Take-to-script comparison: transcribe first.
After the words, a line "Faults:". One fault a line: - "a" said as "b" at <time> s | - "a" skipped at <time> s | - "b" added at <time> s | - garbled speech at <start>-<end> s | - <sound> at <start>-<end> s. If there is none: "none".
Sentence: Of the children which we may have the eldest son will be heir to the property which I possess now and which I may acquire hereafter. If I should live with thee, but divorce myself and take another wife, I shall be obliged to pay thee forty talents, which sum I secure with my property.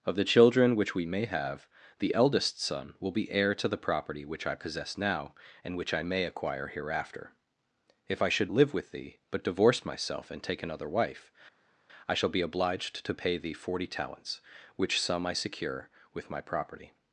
Of the children which we may have the eldest son will be heir to the property which I possess now and which I may acquire hereafter. If I should live with thee, but divorce myself and take another wife, I shall be obliged to pay thee forty talents, which sum I secure with my property.
Faults:
none